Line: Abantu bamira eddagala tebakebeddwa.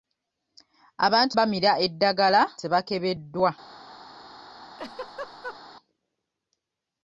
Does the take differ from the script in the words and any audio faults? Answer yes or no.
yes